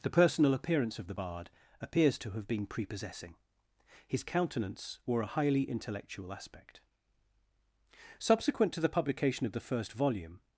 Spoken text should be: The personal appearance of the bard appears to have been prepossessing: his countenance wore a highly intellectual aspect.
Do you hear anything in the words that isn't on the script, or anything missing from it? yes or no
yes